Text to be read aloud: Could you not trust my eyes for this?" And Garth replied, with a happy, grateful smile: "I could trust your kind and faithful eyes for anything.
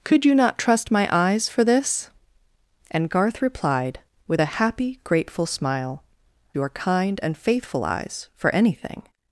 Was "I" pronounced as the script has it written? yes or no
no